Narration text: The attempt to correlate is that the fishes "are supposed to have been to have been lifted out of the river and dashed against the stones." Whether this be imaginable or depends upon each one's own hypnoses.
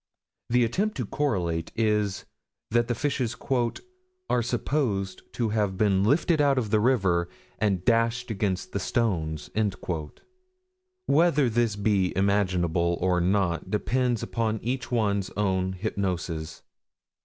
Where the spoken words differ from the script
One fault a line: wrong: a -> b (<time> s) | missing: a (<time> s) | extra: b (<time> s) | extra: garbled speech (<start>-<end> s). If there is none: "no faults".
missing: to have been (6.0 s)
extra: not (13.2 s)